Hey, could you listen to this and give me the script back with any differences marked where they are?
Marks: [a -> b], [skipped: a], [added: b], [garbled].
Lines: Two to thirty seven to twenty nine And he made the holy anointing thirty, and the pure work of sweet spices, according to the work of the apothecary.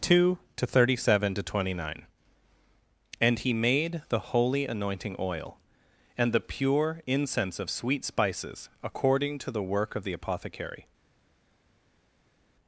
Two to thirty seven to twenty nine And he made the holy anointing [thirty, -> oil] and the pure [work -> incense] of sweet spices, according to the work of the apothecary.